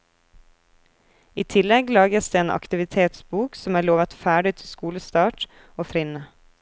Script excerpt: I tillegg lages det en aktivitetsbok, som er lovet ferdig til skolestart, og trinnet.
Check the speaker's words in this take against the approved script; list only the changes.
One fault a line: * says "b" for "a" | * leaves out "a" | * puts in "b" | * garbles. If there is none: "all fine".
all fine